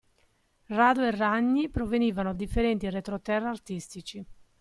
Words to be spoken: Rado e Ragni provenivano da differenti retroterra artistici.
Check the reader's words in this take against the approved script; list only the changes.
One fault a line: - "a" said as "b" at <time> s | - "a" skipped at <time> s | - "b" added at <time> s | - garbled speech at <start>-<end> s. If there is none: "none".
- "da" skipped at 2.3 s